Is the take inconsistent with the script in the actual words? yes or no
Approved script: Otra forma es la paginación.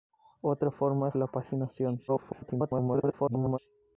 yes